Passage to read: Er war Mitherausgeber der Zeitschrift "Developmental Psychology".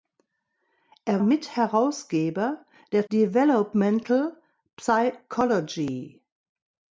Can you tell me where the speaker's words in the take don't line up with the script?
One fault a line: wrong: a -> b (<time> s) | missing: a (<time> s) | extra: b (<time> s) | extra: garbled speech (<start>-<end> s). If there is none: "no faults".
missing: war (1.2 s)
missing: Zeitschrift (3.1 s)